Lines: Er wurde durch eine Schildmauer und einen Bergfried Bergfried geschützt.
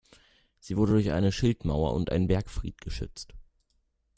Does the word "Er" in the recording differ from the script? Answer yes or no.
yes